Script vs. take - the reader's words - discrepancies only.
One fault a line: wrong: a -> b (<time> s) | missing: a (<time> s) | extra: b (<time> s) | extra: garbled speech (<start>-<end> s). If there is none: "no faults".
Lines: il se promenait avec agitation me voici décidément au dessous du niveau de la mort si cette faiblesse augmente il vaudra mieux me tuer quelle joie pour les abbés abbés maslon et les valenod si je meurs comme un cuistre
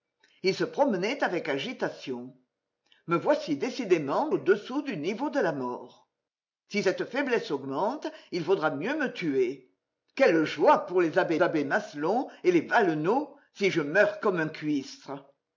no faults